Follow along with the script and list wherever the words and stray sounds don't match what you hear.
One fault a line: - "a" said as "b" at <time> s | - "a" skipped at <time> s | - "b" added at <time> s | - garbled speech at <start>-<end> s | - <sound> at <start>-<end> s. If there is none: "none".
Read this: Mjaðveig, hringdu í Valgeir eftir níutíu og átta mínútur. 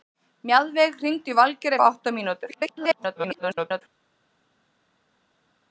- "eftir níutíu" skipped at 1.8 s
- garbled speech at 2.5-3.8 s